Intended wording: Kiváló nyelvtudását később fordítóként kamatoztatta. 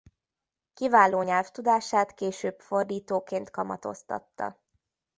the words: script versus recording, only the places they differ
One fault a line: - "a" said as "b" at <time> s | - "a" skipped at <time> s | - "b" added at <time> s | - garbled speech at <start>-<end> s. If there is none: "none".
none